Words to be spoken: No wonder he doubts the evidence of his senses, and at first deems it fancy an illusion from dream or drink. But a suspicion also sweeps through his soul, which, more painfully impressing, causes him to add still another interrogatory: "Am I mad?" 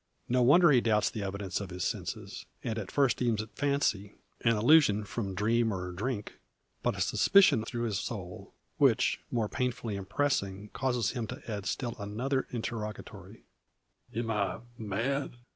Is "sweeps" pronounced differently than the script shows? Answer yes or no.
yes